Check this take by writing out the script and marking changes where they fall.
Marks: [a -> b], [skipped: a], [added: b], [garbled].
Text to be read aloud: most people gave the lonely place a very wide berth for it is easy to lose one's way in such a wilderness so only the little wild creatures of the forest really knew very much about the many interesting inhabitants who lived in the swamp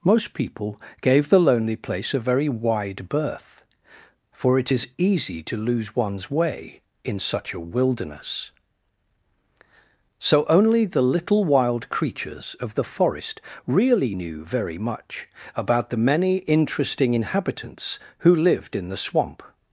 most people gave the lonely place a very wide berth for it is easy to lose one's way in such a wilderness so only the little wild creatures of the forest really knew very much about the many interesting inhabitants who lived in the swamp